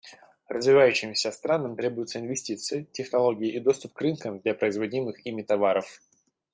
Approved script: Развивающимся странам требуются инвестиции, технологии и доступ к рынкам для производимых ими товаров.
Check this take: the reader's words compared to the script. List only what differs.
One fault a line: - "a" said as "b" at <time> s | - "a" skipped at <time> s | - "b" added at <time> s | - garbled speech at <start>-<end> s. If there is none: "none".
none